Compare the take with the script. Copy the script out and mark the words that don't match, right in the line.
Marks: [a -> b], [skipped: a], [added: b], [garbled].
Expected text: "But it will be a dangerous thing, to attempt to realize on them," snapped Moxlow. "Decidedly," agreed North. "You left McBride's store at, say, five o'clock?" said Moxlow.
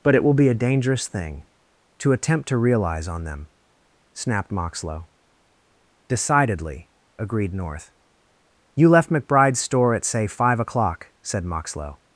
"But it will be a dangerous thing, to attempt to realize on them," snapped Moxlow. "Decidedly," agreed North. "You left McBride's store at, say, five o'clock?" said Moxlow.